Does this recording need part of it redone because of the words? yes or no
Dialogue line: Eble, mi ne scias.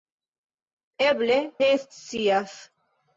yes